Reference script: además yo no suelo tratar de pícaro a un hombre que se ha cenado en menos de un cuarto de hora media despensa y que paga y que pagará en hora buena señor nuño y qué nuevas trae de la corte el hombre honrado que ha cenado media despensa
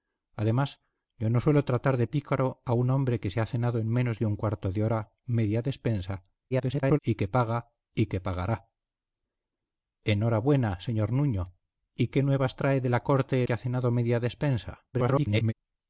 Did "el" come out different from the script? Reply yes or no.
yes